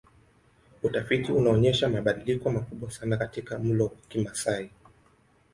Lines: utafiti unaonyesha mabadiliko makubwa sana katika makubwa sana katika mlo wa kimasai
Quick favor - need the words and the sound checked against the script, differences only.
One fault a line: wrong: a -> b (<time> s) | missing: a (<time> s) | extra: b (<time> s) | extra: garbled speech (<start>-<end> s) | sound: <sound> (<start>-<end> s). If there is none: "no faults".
missing: makubwa sana katika (3.6 s)